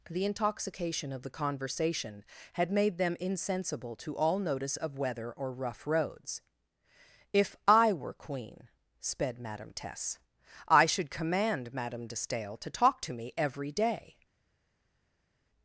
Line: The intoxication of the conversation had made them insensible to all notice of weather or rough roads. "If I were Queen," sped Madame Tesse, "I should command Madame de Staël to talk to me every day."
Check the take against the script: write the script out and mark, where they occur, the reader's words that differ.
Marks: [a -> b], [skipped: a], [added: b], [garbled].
The intoxication of the conversation had made them insensible to all notice of weather or rough roads. "If I were Queen," sped Madame Tesse, "I should command Madame de Staël to talk to me every day."